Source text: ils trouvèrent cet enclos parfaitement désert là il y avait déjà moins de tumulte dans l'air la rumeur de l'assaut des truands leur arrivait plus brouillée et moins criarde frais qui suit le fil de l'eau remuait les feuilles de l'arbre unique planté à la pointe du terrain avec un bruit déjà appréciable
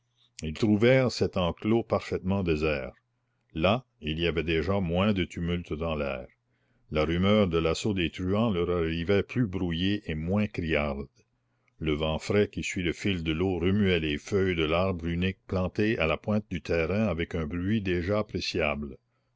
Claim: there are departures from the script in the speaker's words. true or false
true